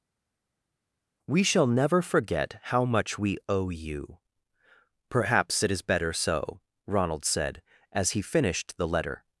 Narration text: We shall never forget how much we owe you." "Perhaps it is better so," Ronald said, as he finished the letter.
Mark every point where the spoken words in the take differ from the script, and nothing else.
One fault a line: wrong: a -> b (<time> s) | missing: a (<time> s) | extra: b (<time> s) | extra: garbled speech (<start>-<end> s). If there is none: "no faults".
no faults